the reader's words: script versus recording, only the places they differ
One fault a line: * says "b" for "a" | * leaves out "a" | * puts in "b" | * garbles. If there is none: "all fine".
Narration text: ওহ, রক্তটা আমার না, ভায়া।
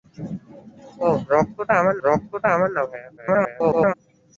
* puts in "রক্তটা আমার"
* garbles